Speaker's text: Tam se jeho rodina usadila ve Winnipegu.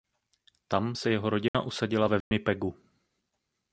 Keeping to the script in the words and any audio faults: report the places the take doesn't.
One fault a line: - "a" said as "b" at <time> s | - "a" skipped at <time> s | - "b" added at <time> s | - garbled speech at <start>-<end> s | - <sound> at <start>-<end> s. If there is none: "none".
- dropout at 1.5-1.5 s
- dropout at 2.2-2.3 s